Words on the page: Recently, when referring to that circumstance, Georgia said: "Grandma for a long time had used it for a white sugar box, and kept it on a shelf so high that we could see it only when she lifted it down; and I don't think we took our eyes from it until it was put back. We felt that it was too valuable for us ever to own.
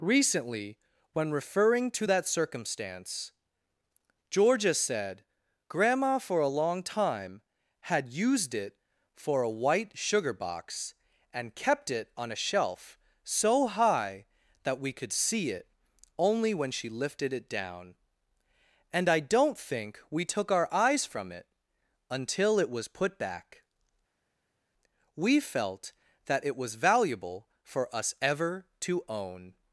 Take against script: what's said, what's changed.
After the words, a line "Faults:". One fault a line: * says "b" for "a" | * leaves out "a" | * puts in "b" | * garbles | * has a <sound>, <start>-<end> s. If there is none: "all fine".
Recently, when referring to that circumstance, Georgia said: "Grandma for a long time had used it for a white sugar box, and kept it on a shelf so high that we could see it only when she lifted it down; and I don't think we took our eyes from it until it was put back. We felt that it was valuable for us ever to own.
Faults:
* leaves out "too"